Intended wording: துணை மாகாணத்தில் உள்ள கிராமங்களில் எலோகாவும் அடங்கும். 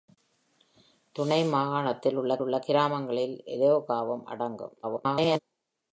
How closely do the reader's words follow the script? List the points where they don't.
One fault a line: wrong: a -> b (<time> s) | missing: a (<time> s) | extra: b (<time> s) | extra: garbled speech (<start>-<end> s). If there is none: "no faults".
extra: உள்ள (2.4 s)
extra: garbled speech (4.8-5.4 s)